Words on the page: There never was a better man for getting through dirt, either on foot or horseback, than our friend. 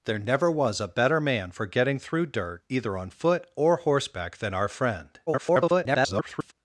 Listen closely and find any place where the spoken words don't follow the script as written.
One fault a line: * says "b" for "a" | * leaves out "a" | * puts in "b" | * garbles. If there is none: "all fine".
* garbles